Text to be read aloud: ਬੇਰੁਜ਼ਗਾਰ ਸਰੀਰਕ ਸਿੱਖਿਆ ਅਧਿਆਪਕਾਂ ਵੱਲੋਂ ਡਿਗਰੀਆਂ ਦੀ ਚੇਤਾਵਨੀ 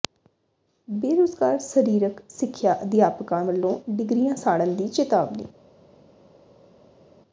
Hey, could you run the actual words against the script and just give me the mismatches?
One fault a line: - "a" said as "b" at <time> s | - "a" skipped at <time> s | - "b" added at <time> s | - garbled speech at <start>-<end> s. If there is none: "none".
- "ਸਾੜਨ" added at 4.3 s